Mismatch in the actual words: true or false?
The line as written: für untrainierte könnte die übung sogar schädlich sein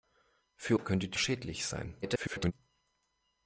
true